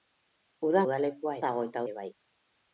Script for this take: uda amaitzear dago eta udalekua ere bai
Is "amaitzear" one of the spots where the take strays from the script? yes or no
yes